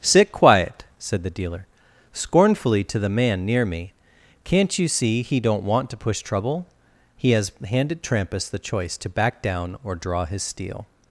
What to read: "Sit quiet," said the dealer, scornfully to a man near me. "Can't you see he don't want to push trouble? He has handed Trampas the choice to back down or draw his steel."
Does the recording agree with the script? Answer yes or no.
no